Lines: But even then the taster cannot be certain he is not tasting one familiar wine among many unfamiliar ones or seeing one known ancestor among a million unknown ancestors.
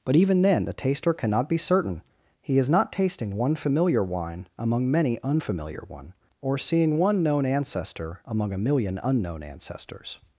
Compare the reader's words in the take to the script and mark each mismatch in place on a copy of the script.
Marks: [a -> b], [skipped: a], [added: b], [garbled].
But even then the taster cannot be certain he is not tasting one familiar wine among many unfamiliar [ones -> one] or seeing one known ancestor among a million unknown ancestors.